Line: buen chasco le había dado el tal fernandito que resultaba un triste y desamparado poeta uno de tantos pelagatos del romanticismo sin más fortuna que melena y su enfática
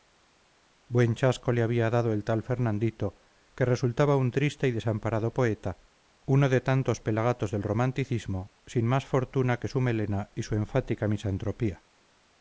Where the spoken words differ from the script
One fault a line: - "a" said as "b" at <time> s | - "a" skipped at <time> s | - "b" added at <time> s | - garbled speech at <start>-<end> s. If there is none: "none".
- "su" added at 9.7 s